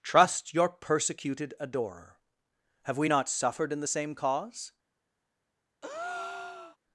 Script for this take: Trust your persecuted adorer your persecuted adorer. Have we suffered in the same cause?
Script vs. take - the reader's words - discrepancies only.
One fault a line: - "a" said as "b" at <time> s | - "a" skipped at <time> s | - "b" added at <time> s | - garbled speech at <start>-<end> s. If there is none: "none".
- "your persecuted adorer" skipped at 2.2 s
- "not" added at 3.1 s